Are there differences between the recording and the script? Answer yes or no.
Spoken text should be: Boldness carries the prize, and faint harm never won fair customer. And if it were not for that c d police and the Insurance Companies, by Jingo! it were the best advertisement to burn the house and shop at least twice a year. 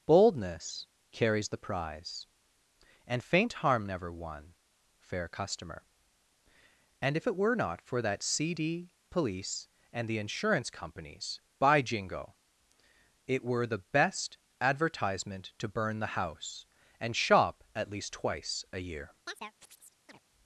no